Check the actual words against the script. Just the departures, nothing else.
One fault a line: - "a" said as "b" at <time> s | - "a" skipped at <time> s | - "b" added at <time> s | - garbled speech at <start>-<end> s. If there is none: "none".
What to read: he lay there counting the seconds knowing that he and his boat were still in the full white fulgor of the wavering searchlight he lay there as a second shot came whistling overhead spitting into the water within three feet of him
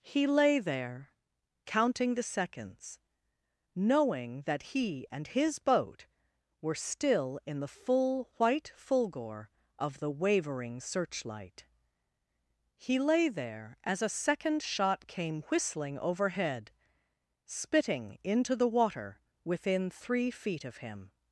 none